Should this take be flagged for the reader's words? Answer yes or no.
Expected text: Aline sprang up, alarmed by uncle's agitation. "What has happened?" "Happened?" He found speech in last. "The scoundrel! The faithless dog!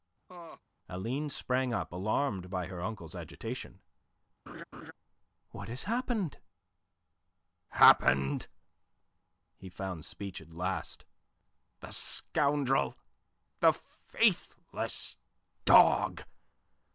yes